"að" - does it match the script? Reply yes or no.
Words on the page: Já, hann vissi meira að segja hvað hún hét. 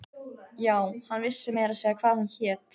yes